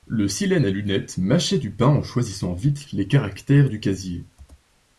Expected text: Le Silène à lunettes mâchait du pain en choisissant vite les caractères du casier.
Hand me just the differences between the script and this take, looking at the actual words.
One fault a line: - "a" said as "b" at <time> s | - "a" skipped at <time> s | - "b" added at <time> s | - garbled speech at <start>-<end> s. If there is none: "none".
none